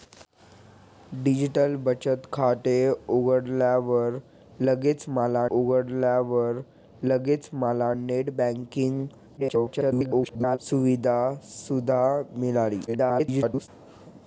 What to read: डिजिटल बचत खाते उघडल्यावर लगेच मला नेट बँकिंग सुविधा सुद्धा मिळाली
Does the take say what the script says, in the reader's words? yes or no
no